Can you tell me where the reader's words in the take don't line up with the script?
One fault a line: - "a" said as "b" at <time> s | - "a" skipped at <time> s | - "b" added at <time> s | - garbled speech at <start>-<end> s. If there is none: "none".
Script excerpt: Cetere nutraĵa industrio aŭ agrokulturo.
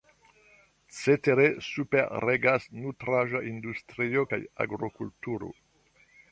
- "superregas" added at 1.7 s
- "aŭ" said as "kaj" at 4.3 s